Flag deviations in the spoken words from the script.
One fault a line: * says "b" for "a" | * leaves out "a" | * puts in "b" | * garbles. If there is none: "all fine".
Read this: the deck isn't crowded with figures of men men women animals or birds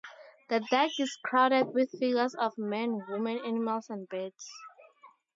* says "is" for "isn't"
* leaves out "men"
* says "and" for "or"